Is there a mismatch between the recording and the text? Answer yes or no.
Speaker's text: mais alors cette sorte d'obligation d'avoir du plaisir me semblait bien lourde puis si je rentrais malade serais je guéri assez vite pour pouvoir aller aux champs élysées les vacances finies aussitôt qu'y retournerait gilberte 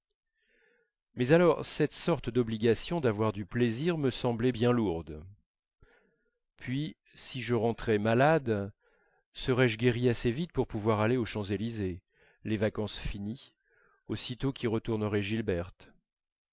no